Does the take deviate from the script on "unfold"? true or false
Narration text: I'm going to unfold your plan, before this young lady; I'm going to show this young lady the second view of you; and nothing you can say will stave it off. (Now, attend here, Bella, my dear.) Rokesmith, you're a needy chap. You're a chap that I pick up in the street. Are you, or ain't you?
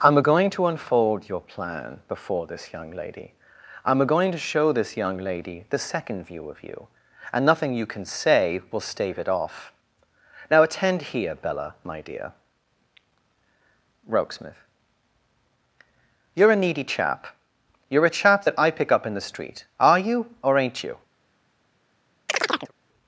false